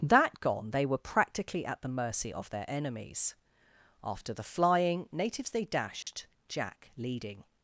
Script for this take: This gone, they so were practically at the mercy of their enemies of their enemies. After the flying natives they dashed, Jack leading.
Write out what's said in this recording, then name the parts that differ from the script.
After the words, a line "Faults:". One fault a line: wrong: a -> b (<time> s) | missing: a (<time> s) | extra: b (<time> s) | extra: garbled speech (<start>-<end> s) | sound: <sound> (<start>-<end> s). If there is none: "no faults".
That gone, they were practically at the mercy of their enemies. After the flying natives they dashed, Jack leading.
Faults:
wrong: This -> That (0.0 s)
missing: so (0.9 s)
missing: of their enemies (3.4 s)
sound: dropout (6.0-6.1 s)